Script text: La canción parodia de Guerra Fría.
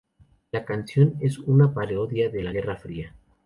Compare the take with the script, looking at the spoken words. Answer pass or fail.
fail